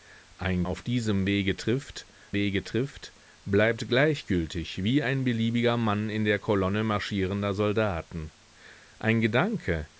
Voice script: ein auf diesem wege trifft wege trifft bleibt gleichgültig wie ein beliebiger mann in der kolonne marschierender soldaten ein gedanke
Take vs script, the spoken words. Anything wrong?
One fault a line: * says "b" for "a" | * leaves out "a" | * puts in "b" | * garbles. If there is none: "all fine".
all fine